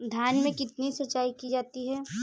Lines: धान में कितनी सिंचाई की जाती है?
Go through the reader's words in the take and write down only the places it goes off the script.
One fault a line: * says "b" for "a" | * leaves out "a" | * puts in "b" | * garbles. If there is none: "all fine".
all fine